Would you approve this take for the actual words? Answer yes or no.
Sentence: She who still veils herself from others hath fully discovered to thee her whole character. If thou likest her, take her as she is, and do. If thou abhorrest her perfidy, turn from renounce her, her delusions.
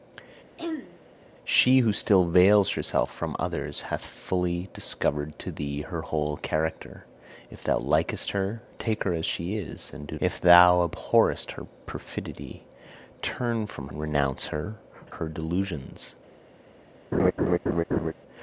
yes